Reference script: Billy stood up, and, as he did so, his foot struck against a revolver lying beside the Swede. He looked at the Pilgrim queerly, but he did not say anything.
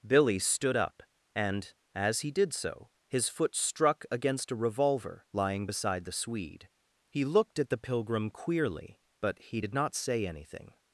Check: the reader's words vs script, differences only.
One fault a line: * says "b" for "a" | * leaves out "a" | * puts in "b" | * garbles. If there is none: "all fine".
all fine